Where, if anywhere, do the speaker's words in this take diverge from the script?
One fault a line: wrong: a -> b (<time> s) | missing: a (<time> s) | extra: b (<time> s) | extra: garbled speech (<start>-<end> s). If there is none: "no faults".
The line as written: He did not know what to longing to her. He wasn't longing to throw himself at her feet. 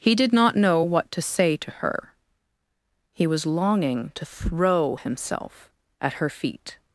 wrong: longing -> say (1.2 s)
wrong: wasn't -> was (3.3 s)